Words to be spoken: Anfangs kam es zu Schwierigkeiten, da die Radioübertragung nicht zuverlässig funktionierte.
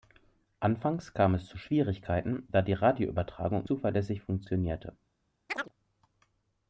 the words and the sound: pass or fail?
fail